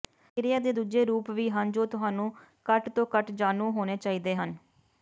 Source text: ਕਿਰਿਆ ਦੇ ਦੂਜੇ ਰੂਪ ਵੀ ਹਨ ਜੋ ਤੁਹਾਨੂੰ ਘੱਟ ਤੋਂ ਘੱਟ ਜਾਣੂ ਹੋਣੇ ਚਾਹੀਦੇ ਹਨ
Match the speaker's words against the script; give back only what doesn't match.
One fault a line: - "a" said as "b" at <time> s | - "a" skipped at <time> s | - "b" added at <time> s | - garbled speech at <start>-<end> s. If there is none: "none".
none